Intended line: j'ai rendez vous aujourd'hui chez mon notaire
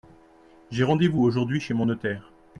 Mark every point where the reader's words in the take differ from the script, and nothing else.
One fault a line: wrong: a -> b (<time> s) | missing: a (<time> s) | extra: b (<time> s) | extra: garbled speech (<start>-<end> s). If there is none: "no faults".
no faults